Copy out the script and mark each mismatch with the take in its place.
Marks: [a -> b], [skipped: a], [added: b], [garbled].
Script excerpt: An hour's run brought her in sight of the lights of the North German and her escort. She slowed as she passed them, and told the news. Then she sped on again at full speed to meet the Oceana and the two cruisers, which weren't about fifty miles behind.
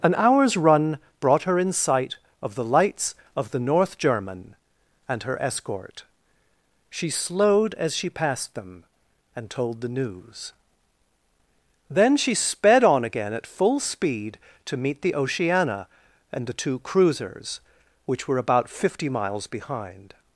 An hour's run brought her in sight of the lights of the North German and her escort. She slowed as she passed them, and told the news. Then she sped on again at full speed to meet the Oceana and the two cruisers, which [weren't -> were] about fifty miles behind.